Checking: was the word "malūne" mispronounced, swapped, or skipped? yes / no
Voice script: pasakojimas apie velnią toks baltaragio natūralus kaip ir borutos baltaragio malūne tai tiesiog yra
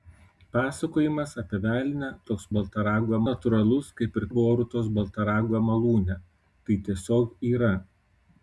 no